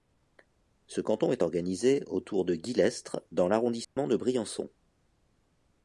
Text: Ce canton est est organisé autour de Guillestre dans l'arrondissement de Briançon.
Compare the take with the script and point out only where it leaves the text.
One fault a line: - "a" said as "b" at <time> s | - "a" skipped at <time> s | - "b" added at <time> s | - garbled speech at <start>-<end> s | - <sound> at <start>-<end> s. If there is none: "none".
- "est" skipped at 1.4 s
- dropout at 3.8-4.0 s